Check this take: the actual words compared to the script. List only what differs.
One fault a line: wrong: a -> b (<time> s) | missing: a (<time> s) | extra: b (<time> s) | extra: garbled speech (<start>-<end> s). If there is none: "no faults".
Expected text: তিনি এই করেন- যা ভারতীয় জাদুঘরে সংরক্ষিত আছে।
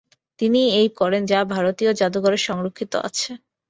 no faults